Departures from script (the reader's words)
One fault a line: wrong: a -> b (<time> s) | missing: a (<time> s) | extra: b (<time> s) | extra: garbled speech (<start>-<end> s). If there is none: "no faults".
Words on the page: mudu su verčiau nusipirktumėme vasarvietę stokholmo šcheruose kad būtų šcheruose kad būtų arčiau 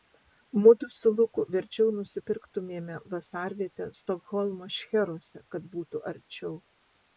extra: luku (1.2 s)
missing: šcheruose kad būtų (6.1 s)